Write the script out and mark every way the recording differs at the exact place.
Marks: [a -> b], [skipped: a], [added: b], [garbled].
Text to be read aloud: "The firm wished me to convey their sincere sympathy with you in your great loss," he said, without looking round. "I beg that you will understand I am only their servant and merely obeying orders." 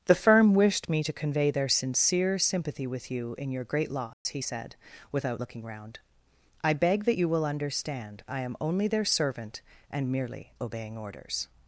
"The firm wished me to convey their sincere sympathy with you in your great loss," he said, without looking round. "I beg that you will understand I am only their servant and merely obeying orders."